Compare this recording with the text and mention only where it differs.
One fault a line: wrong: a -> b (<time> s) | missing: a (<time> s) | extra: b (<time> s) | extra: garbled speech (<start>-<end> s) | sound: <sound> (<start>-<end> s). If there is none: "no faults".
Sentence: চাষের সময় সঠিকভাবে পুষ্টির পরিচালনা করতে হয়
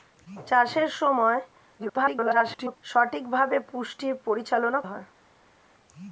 extra: garbled speech (1.8-2.8 s)
missing: করতে (4.8 s)